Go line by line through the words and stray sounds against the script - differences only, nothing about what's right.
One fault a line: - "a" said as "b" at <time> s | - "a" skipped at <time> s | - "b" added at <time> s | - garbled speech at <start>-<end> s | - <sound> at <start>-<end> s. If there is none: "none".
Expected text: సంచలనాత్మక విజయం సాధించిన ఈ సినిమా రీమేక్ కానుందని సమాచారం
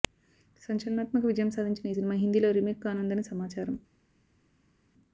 - "హిందీలో" added at 2.2 s